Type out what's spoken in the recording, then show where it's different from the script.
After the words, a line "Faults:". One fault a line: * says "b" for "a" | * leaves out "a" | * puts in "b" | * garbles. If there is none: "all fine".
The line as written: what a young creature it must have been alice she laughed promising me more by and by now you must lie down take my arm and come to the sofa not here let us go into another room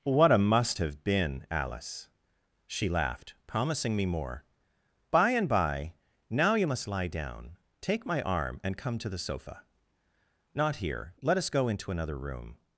what a must have been alice she laughed promising me more by and by now you must lie down take my arm and come to the sofa not here let us go into another room
Faults:
* leaves out "young creature it"